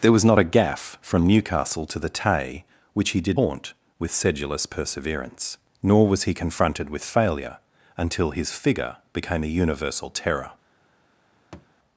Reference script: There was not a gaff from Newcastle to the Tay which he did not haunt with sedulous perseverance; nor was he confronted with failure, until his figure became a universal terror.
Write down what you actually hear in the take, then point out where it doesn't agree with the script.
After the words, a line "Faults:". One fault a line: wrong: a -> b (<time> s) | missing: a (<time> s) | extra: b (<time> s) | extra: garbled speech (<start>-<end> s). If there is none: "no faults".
There was not a gaff from Newcastle to the Tay which he did haunt with sedulous perseverance; nor was he confronted with failure, until his figure became a universal terror.
Faults:
missing: not (3.4 s)